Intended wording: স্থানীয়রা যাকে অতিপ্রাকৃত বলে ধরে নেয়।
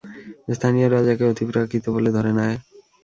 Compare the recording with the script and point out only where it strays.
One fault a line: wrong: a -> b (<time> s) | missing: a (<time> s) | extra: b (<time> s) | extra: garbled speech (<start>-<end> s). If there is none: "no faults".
no faults